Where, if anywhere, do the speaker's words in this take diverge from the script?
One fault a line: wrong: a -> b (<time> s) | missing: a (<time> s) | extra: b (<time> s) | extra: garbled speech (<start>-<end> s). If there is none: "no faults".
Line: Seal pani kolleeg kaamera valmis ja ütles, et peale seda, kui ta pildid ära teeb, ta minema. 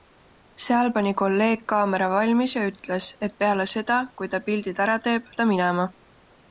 no faults